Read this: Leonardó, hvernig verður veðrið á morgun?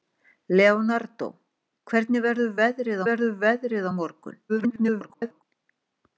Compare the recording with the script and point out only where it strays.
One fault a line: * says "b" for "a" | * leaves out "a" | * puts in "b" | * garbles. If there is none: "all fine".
* puts in "verður veðrið"
* garbles